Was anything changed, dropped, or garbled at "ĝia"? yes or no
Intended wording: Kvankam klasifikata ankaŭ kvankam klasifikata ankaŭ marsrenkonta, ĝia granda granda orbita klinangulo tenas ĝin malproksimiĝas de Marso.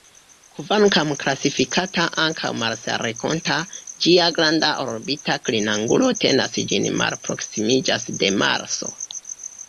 no